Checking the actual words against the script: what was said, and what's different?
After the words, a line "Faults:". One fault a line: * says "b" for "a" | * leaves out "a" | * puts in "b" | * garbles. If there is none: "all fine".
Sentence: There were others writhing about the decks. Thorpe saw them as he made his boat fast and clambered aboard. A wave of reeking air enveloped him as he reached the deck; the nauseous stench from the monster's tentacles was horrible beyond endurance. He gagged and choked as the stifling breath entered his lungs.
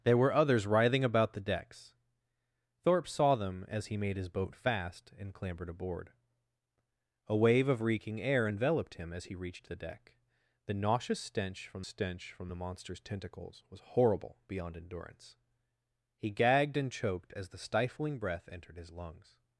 There were others writhing about the decks. Thorpe saw them as he made his boat fast and clambered aboard. A wave of reeking air enveloped him as he reached the deck; the nauseous stench from stench from the monster's tentacles was horrible beyond endurance. He gagged and choked as the stifling breath entered his lungs.
Faults:
* puts in "stench from"